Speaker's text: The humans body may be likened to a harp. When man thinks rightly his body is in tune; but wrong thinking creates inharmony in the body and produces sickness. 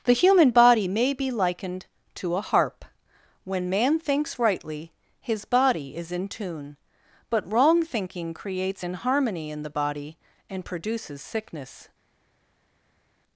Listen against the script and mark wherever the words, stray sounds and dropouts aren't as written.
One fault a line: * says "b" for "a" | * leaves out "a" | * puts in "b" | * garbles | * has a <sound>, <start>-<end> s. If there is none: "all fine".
* says "human" for "humans"